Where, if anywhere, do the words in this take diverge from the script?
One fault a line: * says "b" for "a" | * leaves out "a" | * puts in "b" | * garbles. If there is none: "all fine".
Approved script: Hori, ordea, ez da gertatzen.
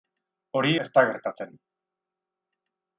* leaves out "ordea"